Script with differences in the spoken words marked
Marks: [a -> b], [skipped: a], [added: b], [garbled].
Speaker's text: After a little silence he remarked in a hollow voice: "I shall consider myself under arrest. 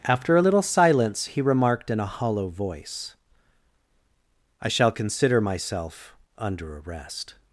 After a little silence he remarked in a hollow voice: "I shall consider myself under arrest.